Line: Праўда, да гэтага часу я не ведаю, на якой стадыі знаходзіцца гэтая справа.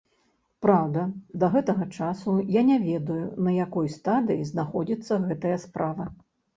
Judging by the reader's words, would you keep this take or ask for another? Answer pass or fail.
pass